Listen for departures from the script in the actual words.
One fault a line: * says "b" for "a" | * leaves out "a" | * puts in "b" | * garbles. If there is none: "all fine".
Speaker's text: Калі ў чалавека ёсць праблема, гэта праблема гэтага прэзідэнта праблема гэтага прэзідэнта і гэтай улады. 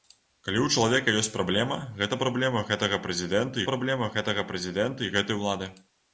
all fine